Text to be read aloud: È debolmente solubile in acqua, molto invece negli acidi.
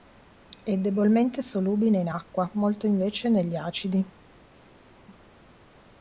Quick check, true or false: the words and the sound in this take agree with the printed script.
true